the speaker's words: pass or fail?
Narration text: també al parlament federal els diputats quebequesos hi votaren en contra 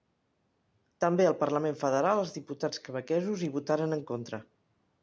pass